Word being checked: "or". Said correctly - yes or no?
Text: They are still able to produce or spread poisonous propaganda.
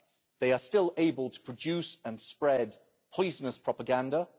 no